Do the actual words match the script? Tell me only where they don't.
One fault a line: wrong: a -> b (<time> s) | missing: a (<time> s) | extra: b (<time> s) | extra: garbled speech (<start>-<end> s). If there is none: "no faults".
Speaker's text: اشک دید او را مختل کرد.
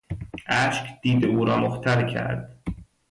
no faults